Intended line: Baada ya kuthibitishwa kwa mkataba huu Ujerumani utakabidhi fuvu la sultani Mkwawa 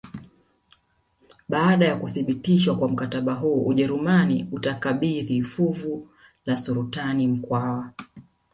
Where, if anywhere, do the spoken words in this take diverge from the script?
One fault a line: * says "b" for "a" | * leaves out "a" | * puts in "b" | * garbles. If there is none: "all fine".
all fine